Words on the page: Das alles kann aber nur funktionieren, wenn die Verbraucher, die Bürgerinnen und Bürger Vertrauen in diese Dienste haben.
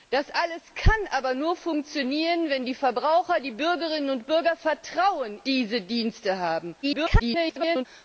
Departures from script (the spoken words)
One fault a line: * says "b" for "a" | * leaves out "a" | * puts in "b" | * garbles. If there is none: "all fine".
* leaves out "in"
* garbles